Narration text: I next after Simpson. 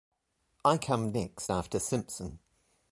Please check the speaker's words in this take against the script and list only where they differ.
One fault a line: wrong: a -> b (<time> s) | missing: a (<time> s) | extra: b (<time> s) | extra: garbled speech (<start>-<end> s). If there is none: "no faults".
extra: come (0.8 s)